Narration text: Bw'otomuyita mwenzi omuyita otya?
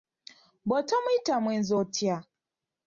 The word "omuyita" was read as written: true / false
false